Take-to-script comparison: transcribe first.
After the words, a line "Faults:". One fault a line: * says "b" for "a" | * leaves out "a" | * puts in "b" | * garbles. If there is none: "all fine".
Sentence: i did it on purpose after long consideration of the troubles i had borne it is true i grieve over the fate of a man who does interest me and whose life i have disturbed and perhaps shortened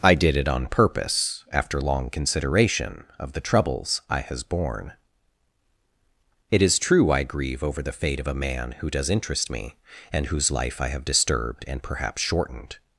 i did it on purpose after long consideration of the troubles i has borne it is true i grieve over the fate of a man who does interest me and whose life i have disturbed and perhaps shortened
Faults:
* says "has" for "had"